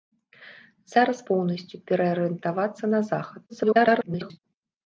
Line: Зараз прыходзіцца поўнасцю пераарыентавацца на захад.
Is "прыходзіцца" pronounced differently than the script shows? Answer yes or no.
yes